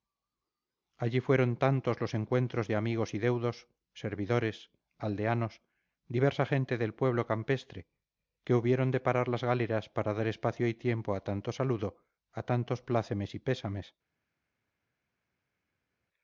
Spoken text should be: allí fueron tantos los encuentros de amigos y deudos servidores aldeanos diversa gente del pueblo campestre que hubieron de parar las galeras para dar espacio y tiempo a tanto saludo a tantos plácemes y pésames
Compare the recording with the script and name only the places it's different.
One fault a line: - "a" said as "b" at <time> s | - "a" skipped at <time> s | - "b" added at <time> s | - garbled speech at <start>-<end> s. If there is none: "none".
none